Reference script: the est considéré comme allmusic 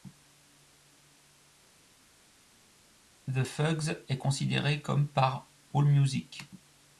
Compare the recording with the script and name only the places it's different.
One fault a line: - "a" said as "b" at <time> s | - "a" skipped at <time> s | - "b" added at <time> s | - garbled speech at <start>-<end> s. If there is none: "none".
- "fugs" added at 3.4 s
- "par" added at 5.1 s